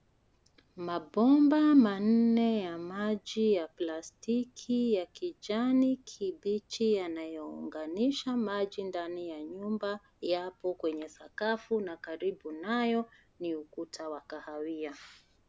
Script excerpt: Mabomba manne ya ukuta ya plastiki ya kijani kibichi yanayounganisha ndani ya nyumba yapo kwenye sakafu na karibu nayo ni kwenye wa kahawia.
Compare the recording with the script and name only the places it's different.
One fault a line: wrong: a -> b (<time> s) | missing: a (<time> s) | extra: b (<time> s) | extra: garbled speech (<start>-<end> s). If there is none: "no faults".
wrong: ukuta -> maji (2.8 s)
extra: maji (8.4 s)
wrong: kwenye -> ukuta (13.5 s)